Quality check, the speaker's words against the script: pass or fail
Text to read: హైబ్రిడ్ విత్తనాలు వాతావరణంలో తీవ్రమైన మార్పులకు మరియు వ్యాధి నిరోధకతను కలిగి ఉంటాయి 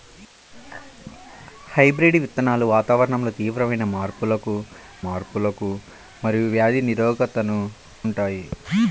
fail